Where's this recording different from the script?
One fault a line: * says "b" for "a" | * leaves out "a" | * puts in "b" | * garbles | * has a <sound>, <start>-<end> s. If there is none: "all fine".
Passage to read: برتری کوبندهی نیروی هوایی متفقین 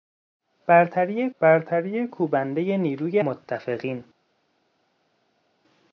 * puts in "برتری"
* leaves out "هوایی"